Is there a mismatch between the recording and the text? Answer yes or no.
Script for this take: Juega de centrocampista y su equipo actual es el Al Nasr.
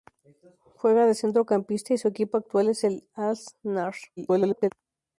yes